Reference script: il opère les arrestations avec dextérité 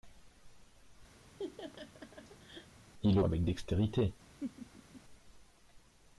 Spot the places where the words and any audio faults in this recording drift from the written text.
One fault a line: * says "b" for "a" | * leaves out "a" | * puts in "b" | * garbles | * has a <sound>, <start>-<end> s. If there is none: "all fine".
* has a laugh, 1.2-2.8 s
* leaves out "opère les arrestations"
* has a laugh, 4.4-5.0 s